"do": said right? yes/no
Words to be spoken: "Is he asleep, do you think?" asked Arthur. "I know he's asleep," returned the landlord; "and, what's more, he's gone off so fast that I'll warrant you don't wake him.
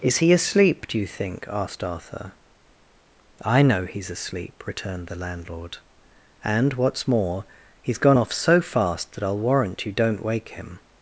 yes